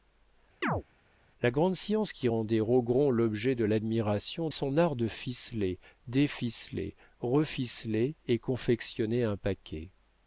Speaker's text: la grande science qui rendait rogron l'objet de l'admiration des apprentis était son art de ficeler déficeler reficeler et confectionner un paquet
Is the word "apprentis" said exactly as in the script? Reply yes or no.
no